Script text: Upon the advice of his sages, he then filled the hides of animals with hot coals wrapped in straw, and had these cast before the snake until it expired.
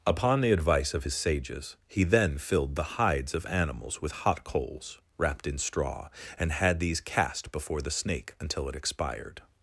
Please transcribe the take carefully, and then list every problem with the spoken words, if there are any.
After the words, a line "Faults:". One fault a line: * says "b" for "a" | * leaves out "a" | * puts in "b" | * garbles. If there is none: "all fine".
Upon the advice of his sages, he then filled the hides of animals with hot coals wrapped in straw, and had these cast before the snake until it expired.
Faults:
all fine